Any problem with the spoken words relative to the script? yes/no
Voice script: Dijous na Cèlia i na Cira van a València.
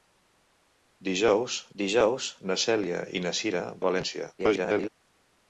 yes